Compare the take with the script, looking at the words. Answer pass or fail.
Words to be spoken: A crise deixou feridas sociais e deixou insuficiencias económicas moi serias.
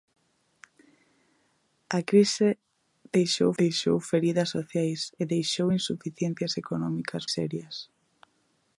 fail